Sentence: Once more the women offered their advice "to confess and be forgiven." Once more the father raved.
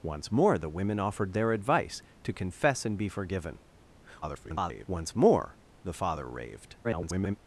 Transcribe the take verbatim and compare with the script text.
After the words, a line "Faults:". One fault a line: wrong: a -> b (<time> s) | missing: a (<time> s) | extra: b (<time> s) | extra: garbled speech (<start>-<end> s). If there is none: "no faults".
Once more the women offered their advice "to confess and be forgiven." [garbled] Once more the father raved. [garbled]
Faults:
extra: garbled speech (4.2-4.9 s)
extra: garbled speech (6.8-7.4 s)